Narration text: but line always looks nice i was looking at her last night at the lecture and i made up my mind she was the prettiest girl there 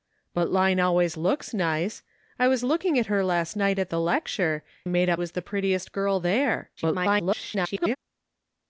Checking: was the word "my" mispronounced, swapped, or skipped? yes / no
yes